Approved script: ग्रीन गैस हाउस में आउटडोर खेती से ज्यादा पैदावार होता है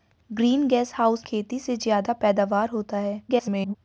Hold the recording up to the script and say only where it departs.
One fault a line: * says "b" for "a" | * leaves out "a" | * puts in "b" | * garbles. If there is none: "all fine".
* leaves out "में आउटडोर"
* garbles